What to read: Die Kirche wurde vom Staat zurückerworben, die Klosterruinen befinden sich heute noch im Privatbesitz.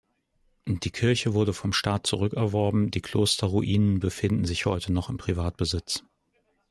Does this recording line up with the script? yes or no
yes